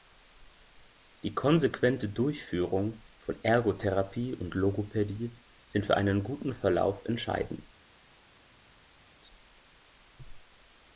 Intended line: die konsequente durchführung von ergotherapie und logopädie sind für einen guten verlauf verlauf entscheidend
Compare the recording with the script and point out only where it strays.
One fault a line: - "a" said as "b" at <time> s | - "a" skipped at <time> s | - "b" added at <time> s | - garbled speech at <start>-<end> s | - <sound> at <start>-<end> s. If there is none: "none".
- "verlauf" skipped at 7.0 s